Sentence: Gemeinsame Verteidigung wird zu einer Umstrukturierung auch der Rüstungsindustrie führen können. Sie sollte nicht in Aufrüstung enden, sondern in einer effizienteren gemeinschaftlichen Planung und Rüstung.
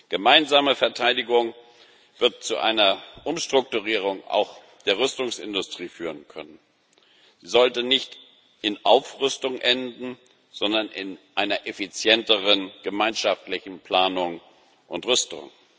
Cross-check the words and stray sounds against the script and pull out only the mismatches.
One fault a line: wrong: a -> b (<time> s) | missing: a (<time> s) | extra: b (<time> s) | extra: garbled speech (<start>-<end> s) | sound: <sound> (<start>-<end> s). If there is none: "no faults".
no faults